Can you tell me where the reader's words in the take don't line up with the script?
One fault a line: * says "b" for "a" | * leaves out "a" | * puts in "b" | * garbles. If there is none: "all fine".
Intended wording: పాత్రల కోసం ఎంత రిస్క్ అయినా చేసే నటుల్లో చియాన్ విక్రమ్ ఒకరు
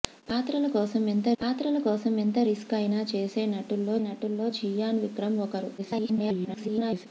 * puts in "పాత్రల కోసం ఎంత"
* puts in "నటుల్లో"
* garbles